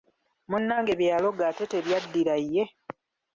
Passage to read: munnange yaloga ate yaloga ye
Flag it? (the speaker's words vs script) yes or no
yes